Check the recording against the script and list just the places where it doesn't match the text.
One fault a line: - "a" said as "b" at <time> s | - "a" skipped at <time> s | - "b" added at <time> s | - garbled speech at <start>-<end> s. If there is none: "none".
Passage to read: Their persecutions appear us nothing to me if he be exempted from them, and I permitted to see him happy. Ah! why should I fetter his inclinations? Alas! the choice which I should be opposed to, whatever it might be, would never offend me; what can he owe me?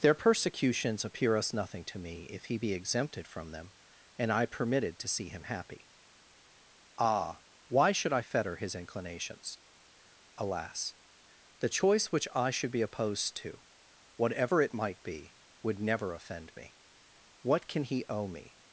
none